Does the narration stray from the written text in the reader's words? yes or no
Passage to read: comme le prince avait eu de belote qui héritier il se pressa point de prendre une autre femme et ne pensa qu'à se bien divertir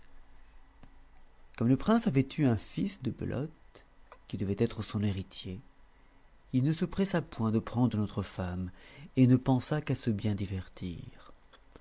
yes